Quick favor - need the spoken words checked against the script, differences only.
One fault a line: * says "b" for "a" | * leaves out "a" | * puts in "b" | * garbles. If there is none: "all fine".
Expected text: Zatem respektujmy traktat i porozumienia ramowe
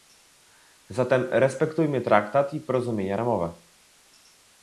all fine